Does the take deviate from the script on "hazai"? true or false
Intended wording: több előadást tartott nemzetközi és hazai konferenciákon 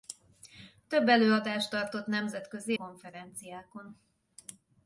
true